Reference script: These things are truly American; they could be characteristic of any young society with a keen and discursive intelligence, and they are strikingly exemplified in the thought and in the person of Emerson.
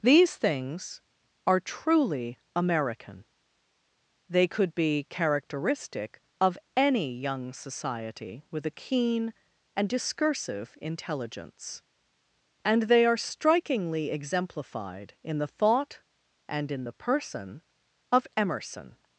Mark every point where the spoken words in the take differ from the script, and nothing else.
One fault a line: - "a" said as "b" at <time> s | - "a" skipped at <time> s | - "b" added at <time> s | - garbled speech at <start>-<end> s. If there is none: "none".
none